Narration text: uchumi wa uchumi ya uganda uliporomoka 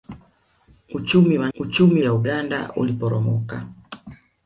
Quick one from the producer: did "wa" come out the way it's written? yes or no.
yes